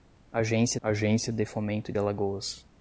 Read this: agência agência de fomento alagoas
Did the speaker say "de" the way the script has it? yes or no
yes